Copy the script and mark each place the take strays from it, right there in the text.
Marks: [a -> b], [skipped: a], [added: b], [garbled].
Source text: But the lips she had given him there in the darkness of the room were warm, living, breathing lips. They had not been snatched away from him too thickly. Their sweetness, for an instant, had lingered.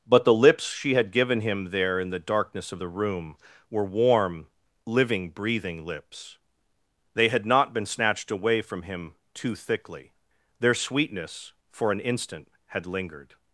But the lips she had given him there in the darkness of the room were warm, living, breathing lips. They had not been snatched away from him too thickly. Their sweetness, for an instant, had lingered.